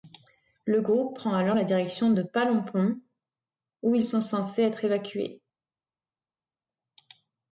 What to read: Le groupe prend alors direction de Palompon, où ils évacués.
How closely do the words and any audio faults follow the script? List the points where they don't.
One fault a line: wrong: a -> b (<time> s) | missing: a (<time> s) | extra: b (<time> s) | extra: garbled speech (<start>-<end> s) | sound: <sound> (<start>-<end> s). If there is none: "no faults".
extra: la (1.5 s)
extra: sont censés être (4.0 s)